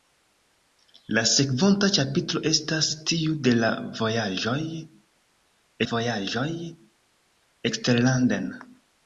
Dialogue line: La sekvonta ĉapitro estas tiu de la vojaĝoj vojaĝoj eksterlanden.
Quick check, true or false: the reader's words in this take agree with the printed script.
true